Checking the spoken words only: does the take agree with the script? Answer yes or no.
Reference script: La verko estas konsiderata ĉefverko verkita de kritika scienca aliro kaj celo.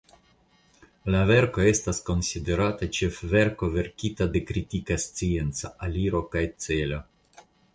yes